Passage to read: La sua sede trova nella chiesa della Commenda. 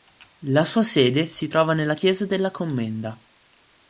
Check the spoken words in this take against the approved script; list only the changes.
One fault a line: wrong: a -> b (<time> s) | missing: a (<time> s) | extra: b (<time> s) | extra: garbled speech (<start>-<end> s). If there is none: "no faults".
extra: si (1.3 s)